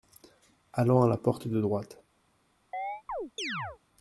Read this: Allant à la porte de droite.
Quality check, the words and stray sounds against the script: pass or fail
fail